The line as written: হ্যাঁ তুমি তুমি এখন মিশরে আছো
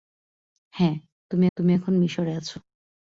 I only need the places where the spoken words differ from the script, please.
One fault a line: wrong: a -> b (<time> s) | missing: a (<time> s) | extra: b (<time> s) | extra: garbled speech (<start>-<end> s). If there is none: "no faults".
no faults